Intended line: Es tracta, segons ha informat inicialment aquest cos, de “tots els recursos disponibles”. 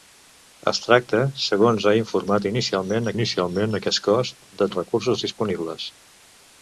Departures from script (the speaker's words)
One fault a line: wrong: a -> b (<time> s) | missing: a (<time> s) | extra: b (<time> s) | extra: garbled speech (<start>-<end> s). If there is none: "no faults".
extra: inicialment (3.1 s)
missing: tots (4.7 s)